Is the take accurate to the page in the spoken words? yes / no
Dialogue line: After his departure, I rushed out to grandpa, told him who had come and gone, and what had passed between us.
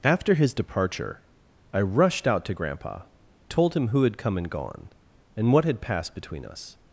yes